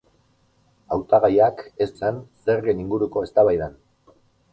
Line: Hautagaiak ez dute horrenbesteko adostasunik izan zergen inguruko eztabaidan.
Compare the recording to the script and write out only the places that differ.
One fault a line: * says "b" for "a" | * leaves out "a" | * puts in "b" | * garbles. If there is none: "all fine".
* leaves out "dute horrenbesteko adostasunik"